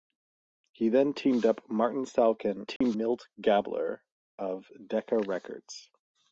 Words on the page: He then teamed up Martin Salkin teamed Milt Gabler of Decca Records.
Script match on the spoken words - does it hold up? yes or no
yes